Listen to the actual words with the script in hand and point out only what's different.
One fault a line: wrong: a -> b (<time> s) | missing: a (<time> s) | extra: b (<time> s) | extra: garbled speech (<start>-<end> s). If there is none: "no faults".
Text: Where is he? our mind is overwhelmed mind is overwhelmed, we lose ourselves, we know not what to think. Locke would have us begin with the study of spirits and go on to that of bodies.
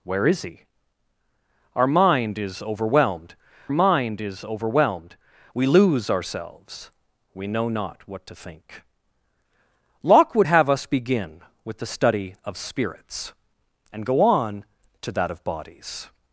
no faults